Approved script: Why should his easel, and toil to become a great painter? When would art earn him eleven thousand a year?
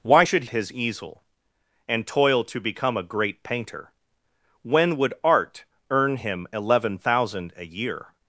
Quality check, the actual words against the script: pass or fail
pass